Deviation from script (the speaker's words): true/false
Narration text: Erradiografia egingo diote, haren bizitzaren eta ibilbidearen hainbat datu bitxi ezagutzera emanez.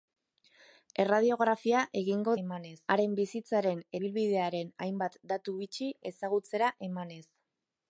true